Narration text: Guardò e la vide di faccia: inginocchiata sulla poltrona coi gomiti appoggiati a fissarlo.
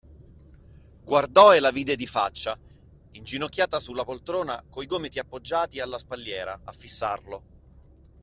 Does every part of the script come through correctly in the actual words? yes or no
no